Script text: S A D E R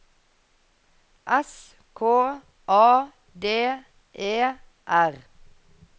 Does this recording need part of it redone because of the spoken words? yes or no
yes